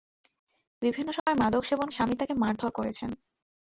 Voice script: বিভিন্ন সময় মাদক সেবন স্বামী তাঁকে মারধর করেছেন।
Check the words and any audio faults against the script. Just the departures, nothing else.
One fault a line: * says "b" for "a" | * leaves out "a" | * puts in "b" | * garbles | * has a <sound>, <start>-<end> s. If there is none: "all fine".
* has a dropout, 1.2-1.3 s